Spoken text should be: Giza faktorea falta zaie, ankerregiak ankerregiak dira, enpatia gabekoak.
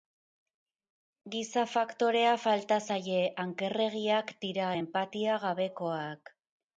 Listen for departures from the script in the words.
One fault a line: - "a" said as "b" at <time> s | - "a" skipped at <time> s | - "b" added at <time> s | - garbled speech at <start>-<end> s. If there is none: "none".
- "ankerregiak" skipped at 4.3 s